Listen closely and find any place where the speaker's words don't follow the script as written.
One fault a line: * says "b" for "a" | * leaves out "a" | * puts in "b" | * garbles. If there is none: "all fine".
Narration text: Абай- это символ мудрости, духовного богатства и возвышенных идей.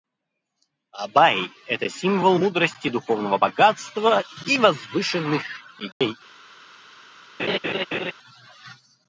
all fine